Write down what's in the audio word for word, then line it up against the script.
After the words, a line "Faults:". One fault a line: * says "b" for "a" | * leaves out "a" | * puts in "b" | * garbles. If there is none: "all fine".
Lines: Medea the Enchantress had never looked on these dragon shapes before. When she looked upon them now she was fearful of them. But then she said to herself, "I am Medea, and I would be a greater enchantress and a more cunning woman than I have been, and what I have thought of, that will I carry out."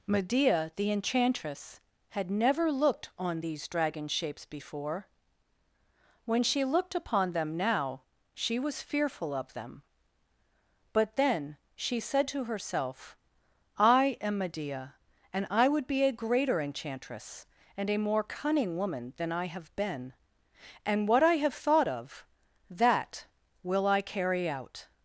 Medea the Enchantress had never looked on these dragon shapes before. When she looked upon them now she was fearful of them. But then she said to herself, "I am Medea, and I would be a greater enchantress and a more cunning woman than I have been, and what I have thought of, that will I carry out."
Faults:
all fine